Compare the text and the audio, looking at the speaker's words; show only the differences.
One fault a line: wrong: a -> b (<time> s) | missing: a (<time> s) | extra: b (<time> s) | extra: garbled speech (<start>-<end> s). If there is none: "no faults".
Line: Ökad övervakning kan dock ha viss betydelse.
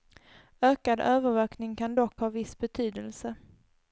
no faults